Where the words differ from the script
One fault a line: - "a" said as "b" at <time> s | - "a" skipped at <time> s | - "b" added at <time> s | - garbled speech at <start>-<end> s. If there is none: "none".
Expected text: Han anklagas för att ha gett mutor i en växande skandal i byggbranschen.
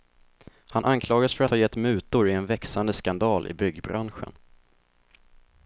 - "att" skipped at 1.4 s